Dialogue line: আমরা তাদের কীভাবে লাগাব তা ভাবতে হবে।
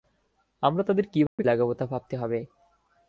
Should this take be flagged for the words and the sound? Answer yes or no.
yes